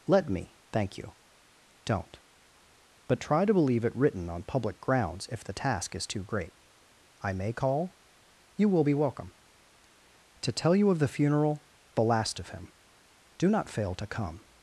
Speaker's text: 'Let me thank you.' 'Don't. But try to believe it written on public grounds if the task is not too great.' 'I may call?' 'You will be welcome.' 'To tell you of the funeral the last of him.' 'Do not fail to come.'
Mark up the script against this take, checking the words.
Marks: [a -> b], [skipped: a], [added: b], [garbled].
'Let me thank you.' 'Don't. But try to believe it written on public grounds if the task is [skipped: not] too great.' 'I may call?' 'You will be welcome.' 'To tell you of the funeral the last of him.' 'Do not fail to come.'